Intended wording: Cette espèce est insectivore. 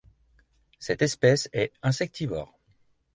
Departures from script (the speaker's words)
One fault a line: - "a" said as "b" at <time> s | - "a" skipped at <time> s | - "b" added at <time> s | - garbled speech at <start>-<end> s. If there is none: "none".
none